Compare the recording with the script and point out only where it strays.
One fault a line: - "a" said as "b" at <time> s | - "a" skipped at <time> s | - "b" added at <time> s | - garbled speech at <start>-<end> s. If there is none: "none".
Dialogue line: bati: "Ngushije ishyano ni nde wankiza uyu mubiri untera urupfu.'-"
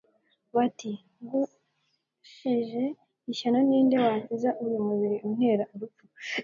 none